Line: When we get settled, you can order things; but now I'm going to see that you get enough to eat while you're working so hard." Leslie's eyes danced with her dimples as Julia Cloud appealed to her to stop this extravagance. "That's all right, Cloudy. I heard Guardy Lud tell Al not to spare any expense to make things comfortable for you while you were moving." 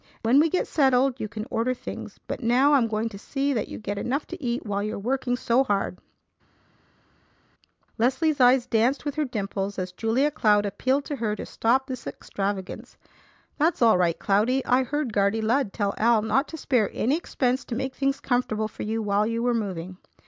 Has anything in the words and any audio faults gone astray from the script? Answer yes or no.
no